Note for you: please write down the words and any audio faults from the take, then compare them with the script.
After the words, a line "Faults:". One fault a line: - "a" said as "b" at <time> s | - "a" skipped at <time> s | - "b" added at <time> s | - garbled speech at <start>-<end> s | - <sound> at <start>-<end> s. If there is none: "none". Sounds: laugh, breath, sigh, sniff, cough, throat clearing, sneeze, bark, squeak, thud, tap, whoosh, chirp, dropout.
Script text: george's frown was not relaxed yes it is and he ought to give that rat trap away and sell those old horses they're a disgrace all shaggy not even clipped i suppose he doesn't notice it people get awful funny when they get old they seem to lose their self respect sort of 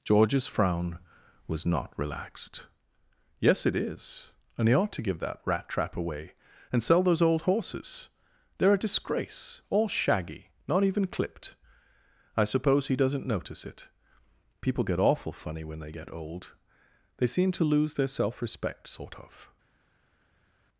george's frown was not relaxed yes it is and he ought to give that rat trap away and sell those old horses they're a disgrace all shaggy not even clipped i suppose he doesn't notice it people get awful funny when they get old they seem to lose their self respect sort of
Faults:
none